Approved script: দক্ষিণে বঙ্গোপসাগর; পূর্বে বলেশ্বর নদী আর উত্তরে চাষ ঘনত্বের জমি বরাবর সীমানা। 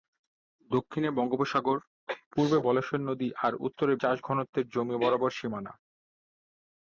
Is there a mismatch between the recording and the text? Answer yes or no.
no